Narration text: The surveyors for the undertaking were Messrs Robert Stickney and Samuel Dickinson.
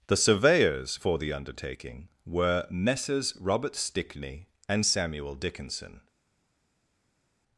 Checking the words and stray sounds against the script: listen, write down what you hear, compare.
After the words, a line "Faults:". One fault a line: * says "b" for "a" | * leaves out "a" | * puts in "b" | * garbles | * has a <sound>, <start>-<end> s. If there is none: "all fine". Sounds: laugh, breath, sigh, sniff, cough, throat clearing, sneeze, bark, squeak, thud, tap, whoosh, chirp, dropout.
The surveyors for the undertaking were Messrs Robert Stickney and Samuel Dickinson.
Faults:
all fine